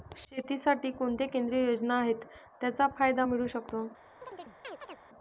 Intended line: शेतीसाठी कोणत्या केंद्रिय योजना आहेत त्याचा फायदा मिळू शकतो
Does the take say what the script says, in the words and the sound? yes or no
no